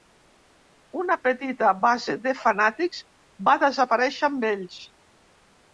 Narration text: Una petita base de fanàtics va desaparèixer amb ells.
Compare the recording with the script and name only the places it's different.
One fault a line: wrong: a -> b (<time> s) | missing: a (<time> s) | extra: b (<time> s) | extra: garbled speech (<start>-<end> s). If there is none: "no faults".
no faults